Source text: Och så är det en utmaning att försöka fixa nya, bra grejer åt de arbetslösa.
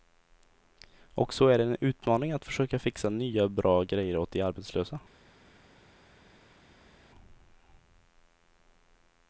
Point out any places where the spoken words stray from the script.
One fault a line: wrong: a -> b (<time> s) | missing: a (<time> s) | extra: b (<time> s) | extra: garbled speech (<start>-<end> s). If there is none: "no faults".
no faults